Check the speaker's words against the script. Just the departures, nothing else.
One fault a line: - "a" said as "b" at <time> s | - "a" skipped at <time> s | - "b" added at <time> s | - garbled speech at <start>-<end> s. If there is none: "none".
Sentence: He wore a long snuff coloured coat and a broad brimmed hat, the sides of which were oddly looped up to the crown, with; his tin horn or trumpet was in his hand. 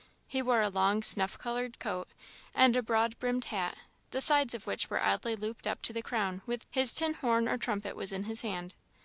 none